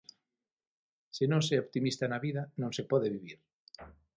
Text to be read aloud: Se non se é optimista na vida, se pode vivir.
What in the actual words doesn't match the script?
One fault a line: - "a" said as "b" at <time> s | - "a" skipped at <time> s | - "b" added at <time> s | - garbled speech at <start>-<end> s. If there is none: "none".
- "non" added at 2.6 s